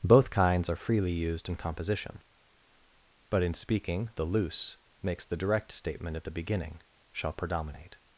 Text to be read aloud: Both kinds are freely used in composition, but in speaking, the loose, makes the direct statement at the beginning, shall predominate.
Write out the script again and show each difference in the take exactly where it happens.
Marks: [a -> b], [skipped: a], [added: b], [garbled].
Both kinds are freely used in composition, but in speaking, the loose, makes the direct statement at the beginning, shall predominate.